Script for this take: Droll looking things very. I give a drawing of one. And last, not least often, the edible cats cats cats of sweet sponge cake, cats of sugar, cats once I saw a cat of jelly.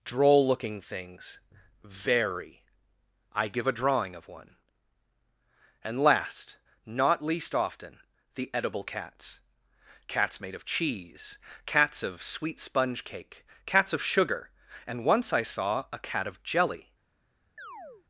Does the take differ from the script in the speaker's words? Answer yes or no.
yes